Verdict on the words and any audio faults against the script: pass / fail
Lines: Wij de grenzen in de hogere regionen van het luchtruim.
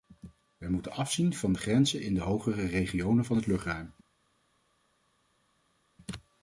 fail